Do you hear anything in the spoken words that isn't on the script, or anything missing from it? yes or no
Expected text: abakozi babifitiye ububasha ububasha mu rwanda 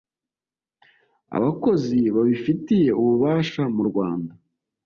yes